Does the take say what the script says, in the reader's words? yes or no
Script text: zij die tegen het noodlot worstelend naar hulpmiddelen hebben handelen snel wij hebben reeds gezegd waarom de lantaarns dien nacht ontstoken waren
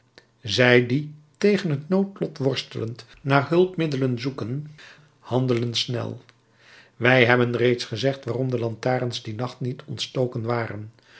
no